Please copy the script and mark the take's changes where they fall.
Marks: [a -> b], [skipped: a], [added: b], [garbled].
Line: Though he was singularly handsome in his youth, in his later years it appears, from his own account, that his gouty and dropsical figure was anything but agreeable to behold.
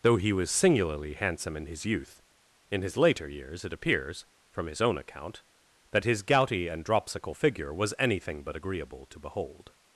Though he was singularly handsome in his youth, in his later years it appears, from his own account, that his gouty and dropsical figure was anything but agreeable to behold.